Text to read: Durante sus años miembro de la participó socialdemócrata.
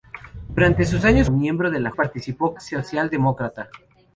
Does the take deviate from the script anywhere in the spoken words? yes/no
no